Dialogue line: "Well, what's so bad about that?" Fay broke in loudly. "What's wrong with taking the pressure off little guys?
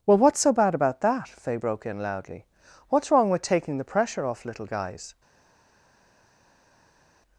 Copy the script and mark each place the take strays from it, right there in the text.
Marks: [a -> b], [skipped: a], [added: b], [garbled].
"Well, what's so bad about that?" Fay broke in loudly. "What's wrong with taking the pressure off little guys?